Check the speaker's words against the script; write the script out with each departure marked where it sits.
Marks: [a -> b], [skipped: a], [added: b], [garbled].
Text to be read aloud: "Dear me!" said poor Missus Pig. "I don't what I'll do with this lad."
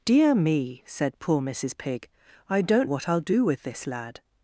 "Dear me!" said poor Missus Pig. "I don't what I'll do with this lad."